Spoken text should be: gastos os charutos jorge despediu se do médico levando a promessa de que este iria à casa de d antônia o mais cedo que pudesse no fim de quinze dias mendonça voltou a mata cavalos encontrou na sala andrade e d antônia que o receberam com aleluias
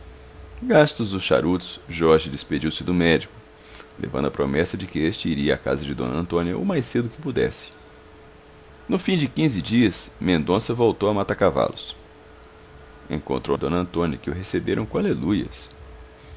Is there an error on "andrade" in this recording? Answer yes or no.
yes